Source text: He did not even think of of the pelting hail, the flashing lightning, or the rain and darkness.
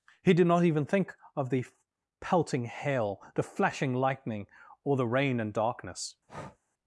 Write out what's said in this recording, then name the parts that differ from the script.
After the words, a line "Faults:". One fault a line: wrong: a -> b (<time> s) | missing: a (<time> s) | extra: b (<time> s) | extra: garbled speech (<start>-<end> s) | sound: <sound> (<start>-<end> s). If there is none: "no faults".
He did not even think of the pelting hail, the flashing lightning, or the rain and darkness.
Faults:
missing: of (1.5 s)
sound: breath (6.3-6.6 s)